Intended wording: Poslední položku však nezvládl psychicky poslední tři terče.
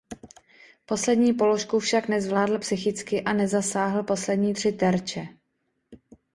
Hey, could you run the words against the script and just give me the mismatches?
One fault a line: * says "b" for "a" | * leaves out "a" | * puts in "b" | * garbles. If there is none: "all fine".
* puts in "a nezasáhl"